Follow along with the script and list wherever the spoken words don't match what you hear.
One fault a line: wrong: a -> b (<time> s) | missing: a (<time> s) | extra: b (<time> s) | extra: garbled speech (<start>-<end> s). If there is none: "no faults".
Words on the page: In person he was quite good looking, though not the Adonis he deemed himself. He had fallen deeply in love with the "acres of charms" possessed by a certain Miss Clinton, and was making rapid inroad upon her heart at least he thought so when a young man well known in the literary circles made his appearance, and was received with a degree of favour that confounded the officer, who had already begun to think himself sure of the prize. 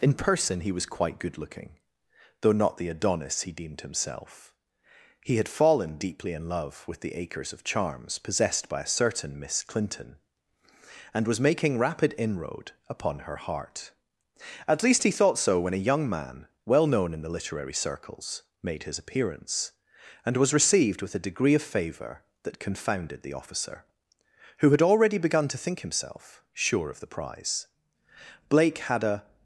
extra: Blake had a (28.5 s)